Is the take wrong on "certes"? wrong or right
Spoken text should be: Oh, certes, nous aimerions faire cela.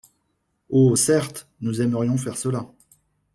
right